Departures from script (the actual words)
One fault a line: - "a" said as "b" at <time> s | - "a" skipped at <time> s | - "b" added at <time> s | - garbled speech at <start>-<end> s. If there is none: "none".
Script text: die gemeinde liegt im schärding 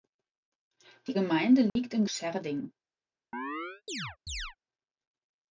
none